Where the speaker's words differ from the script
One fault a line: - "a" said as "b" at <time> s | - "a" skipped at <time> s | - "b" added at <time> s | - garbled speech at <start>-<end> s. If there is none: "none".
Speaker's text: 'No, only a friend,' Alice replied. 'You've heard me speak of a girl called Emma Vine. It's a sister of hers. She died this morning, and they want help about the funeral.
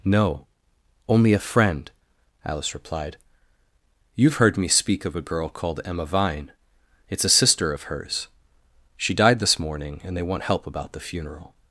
none